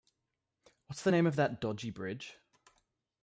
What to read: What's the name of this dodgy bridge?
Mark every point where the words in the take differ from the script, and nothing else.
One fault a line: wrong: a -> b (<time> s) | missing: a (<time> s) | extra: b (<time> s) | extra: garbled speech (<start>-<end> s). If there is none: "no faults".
wrong: this -> that (1.4 s)